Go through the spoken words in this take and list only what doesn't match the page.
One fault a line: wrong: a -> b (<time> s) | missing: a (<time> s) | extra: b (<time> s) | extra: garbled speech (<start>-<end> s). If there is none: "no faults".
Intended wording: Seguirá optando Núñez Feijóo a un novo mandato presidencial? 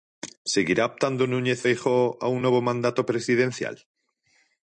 no faults